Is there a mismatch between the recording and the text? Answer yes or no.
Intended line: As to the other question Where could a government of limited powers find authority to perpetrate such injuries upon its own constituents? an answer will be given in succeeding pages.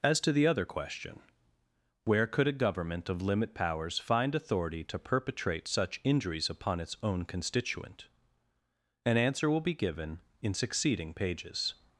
yes